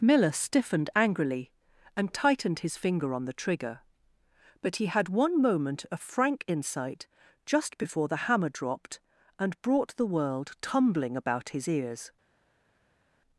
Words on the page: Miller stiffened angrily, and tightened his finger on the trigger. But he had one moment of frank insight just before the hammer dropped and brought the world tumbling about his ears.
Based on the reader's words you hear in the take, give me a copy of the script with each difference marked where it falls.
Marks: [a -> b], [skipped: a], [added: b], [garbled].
Miller stiffened angrily, and tightened his finger on the trigger. But he had one moment of frank insight just before the hammer dropped and brought the world tumbling about his ears.